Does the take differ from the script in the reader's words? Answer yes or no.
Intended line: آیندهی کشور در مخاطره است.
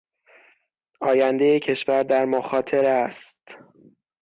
no